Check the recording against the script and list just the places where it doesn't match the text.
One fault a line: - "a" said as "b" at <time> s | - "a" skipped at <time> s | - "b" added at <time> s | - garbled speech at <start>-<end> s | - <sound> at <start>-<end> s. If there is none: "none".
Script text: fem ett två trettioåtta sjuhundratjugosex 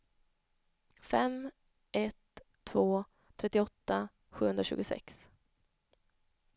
none